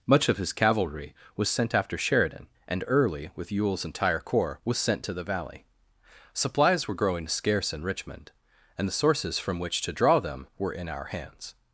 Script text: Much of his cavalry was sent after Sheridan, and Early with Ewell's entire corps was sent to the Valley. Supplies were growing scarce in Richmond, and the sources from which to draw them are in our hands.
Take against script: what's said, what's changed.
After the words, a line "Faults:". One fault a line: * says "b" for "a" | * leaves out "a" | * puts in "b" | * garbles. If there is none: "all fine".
Much of his cavalry was sent after Sheridan, and Early with Ewell's entire corps was sent to the Valley. Supplies were growing scarce in Richmond, and the sources from which to draw them were in our hands.
Faults:
* says "were" for "are"